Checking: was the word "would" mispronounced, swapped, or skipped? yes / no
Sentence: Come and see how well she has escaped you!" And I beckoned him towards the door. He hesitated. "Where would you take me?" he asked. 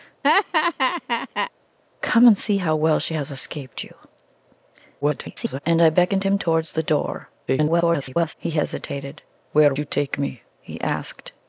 yes